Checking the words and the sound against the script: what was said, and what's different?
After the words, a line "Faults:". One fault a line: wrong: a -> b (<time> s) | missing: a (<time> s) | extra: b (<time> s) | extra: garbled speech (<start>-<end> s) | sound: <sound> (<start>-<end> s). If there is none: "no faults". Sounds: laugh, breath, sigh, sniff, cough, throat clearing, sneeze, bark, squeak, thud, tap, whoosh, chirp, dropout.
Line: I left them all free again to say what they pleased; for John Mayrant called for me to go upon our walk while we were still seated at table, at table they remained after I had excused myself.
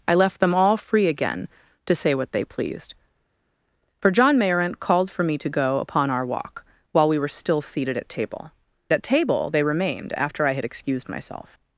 I left them all free again to say what they pleased; for John Mayrant called for me to go upon our walk while we were still seated at table, at table they remained after I had excused myself.
Faults:
no faults